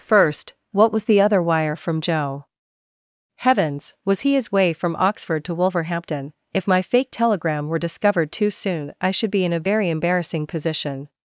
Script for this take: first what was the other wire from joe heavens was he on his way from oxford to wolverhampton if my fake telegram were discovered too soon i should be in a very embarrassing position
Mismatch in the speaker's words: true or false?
true